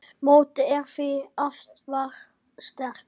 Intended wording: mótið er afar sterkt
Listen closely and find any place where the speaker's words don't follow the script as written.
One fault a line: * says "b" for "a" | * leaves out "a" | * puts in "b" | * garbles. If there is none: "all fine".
* puts in "því"